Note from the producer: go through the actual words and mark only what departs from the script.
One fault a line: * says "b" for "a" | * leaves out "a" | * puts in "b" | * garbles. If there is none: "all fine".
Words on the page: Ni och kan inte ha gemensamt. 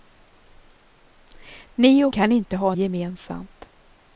all fine